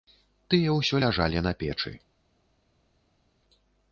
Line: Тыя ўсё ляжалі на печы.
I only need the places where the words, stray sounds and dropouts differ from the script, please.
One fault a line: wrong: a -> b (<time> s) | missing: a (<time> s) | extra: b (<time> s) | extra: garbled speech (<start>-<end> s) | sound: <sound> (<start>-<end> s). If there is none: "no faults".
no faults